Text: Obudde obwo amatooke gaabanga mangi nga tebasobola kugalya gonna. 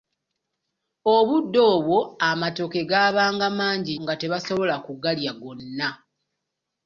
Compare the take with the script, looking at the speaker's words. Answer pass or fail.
pass